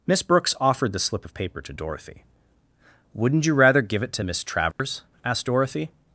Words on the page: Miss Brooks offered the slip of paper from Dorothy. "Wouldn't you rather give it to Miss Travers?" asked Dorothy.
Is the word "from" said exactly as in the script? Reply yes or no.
no